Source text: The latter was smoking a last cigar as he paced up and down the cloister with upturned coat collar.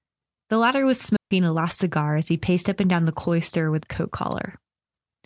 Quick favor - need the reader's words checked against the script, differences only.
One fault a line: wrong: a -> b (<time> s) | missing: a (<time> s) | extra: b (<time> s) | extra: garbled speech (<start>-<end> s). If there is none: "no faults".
missing: upturned (3.9 s)